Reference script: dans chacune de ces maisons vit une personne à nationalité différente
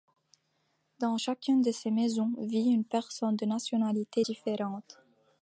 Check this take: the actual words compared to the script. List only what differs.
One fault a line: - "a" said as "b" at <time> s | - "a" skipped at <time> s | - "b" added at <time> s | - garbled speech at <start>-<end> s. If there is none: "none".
- "à" said as "de" at 3.4 s